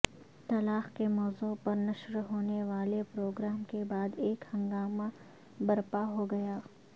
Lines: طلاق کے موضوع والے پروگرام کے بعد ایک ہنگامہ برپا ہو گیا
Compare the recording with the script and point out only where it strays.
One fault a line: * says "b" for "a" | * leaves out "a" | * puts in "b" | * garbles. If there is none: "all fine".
* puts in "پر نشر ہونے"